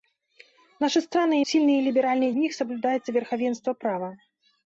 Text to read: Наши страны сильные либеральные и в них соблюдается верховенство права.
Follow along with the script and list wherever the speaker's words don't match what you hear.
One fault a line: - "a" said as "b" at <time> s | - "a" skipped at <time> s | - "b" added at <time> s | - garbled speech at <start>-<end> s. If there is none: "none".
none